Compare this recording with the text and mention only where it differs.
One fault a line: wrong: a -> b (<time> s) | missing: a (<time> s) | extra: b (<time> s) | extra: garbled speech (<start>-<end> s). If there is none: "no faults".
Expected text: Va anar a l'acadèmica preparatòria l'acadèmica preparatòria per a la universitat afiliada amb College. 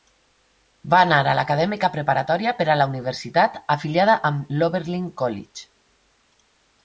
missing: l'acadèmica preparatòria (2.5 s)
extra: l'Oberlin (4.6 s)